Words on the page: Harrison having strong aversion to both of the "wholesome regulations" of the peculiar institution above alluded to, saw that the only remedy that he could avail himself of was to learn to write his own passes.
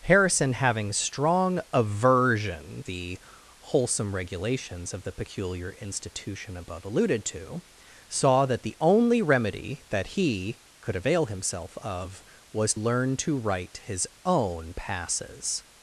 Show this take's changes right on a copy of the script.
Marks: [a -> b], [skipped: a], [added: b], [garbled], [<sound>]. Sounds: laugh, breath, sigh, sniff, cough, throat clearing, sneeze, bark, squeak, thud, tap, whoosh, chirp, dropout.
Harrison having strong aversion [skipped: to both of] the "wholesome regulations" of the peculiar institution above alluded to, saw that the only remedy that he could avail himself of was [skipped: to] learn to write his own passes.